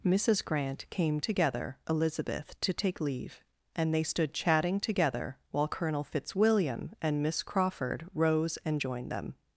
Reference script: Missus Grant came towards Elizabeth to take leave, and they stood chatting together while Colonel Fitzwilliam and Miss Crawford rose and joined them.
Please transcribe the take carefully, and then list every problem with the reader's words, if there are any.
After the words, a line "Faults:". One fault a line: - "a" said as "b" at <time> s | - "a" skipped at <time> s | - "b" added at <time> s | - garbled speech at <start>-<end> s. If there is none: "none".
Missus Grant came together Elizabeth to take leave, and they stood chatting together while Colonel Fitzwilliam and Miss Crawford rose and joined them.
Faults:
- "towards" said as "together" at 1.2 s